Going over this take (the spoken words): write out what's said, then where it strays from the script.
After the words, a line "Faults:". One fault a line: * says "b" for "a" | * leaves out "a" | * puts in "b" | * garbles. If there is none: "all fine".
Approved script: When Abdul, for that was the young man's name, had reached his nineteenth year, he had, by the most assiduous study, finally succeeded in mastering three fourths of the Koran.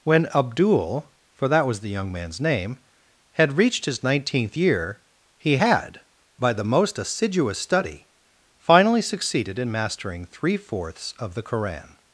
When Abdul, for that was the young man's name, had reached his nineteenth year, he had, by the most assiduous study, finally succeeded in mastering three fourths of the Koran.
Faults:
all fine